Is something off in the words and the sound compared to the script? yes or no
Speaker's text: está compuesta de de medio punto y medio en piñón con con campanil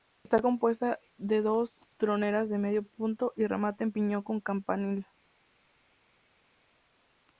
yes